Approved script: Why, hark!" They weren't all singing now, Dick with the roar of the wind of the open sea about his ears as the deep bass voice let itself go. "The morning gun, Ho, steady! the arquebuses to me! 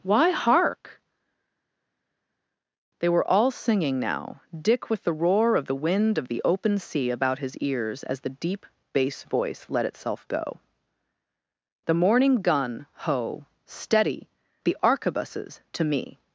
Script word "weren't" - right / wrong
wrong